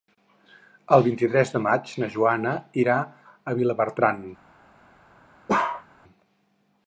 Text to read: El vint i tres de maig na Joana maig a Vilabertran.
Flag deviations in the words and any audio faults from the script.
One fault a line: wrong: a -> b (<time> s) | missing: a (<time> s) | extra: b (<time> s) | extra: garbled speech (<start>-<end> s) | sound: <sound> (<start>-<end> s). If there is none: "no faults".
wrong: maig -> irà (2.9 s)
sound: bark (5.5-5.9 s)